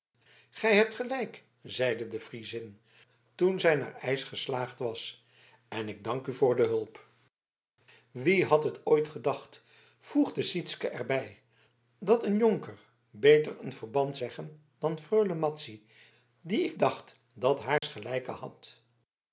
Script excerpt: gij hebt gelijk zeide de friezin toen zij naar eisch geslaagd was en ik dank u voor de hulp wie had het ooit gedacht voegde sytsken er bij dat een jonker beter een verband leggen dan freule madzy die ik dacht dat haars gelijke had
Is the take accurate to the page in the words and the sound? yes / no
no